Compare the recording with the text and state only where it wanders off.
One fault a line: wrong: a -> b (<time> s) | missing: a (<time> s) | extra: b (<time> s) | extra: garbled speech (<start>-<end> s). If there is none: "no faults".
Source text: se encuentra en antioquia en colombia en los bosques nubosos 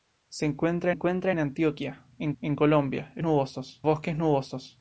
extra: encuentra (0.9 s)
extra: en (2.4 s)
wrong: los -> nubosos (3.2 s)